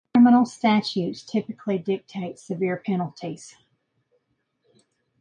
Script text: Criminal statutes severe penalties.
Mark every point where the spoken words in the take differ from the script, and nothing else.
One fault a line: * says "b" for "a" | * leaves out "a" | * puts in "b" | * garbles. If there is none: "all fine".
* puts in "typically dictate"